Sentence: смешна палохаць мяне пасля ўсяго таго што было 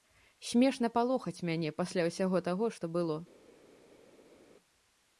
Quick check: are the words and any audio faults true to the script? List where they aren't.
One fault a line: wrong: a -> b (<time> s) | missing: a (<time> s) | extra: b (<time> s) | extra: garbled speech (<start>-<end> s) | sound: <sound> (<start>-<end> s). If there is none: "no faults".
no faults